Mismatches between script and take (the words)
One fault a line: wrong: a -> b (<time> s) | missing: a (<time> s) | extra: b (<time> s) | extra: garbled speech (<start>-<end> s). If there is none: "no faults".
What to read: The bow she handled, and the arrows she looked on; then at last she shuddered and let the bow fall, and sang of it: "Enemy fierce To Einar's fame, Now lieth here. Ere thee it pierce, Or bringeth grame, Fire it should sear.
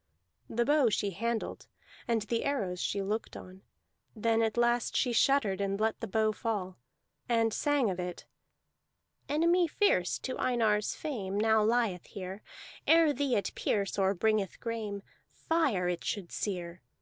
no faults